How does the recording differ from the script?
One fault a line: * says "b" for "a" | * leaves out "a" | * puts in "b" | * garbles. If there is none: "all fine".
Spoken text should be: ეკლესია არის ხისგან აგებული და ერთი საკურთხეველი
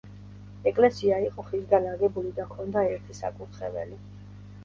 * says "იყო" for "არის"
* puts in "ჰქონდა"